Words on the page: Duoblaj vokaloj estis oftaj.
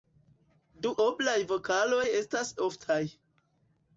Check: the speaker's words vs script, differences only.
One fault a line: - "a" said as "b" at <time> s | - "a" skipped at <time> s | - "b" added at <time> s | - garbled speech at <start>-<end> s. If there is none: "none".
- "estis" said as "estas" at 2.2 s